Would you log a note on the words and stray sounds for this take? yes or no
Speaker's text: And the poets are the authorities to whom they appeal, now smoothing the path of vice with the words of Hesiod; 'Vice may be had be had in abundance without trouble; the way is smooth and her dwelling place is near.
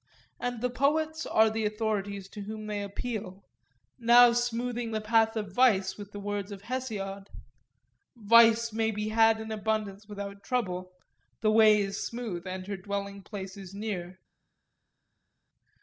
yes